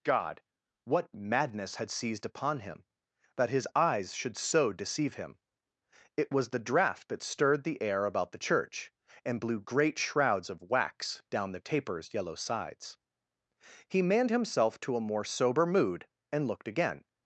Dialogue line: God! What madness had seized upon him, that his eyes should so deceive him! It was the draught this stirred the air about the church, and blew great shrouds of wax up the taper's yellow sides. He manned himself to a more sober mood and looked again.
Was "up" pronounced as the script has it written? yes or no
no